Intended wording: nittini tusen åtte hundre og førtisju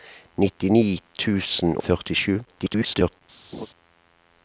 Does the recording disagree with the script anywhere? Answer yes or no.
yes